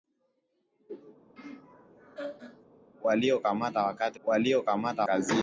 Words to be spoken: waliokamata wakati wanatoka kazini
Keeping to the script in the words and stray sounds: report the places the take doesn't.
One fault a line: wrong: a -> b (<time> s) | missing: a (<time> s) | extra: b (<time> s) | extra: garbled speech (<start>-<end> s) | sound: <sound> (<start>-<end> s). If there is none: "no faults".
sound: laugh (1.4-2.7 s)
wrong: wanatoka -> waliokamata (4.2 s)